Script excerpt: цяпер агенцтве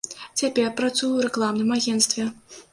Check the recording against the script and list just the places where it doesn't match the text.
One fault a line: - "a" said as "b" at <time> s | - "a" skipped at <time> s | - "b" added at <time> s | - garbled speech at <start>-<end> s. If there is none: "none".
- "працую ў рэкламным" added at 0.8 s